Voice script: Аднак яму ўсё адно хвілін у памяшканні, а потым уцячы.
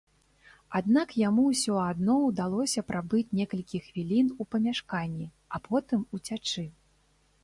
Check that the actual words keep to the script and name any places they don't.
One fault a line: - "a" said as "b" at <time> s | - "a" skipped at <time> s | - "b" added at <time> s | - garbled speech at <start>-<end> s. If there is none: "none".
- "ўдалося прабыць некалькі" added at 2.2 s